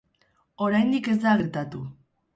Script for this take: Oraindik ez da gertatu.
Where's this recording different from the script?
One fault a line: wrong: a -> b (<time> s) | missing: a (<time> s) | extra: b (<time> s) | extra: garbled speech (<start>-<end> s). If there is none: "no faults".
no faults